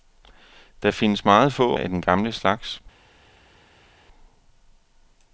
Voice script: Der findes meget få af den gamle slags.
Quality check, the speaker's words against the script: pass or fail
pass